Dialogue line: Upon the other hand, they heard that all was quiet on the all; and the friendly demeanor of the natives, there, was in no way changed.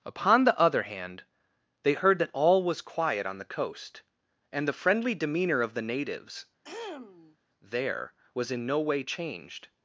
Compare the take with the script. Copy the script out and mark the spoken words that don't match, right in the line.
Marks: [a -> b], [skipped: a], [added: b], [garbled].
Upon the other hand, they heard that all was quiet on the [all; -> coast] and the friendly demeanor of the natives, there, was in no way changed.